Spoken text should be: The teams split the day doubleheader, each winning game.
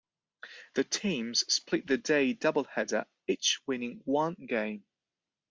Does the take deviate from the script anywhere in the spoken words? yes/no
yes